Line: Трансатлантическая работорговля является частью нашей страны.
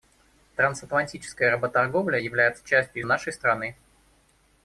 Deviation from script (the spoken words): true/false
false